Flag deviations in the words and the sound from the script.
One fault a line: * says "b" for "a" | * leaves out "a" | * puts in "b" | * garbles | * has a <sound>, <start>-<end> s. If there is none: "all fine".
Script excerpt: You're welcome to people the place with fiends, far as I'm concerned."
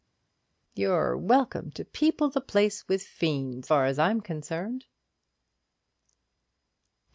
all fine